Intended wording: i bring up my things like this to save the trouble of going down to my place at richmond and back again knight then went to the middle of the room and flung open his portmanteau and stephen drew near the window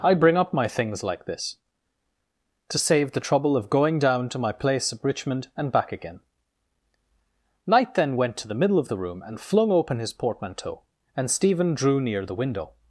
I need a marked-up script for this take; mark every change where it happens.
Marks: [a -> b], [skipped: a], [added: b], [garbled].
i bring up my things like this to save the trouble of going down to my place at richmond and back again knight then went to the middle of the room and flung open his portmanteau and stephen drew near the window